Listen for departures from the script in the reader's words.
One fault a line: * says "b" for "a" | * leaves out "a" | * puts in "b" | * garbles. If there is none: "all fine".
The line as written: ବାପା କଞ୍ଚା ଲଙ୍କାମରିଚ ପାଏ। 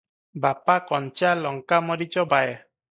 all fine